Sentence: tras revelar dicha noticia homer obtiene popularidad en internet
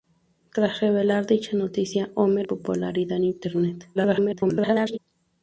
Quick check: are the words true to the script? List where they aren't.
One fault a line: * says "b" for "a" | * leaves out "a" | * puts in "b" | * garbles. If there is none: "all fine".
* leaves out "obtiene"
* garbles